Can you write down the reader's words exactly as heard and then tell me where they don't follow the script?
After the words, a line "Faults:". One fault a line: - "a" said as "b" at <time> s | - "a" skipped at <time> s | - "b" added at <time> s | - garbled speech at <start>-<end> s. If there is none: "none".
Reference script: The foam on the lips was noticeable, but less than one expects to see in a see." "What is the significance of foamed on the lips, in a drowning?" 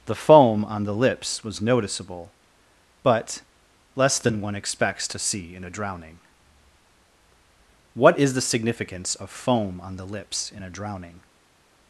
The foam on the lips was noticeable, but less than one expects to see in a drowning." "What is the significance of foam on the lips, in a drowning?"
Faults:
- "see" said as "drowning" at 5.7 s
- "foamed" said as "foam" at 9.3 s